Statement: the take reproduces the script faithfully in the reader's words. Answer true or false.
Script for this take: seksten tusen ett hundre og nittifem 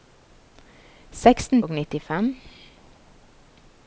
false